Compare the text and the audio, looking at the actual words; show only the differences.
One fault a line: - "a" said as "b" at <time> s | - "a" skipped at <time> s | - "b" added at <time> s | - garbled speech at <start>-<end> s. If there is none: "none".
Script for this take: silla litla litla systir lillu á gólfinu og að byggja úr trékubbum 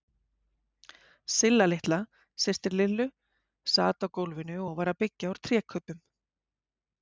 - "litla" skipped at 2.0 s
- "sat" added at 3.8 s
- "var" added at 4.8 s